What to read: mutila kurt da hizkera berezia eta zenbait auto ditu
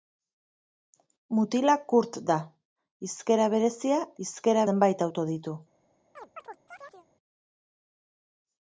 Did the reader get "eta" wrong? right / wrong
wrong